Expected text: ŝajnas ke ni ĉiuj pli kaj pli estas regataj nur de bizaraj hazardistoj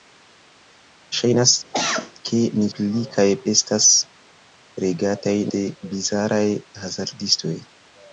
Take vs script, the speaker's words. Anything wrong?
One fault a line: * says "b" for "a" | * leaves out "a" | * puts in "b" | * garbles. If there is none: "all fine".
* leaves out "ĉiuj"
* leaves out "pli"
* leaves out "nur"